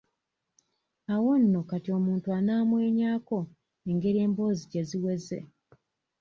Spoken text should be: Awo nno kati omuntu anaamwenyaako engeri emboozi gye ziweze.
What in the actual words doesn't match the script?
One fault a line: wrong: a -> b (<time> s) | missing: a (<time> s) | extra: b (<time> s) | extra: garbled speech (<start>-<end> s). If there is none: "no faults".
no faults